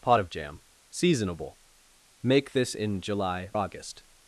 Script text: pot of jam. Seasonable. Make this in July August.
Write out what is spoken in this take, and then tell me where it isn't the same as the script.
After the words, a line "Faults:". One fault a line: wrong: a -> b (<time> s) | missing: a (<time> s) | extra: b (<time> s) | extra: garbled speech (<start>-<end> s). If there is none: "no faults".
pot of jam. Seasonable. Make this in July August.
Faults:
no faults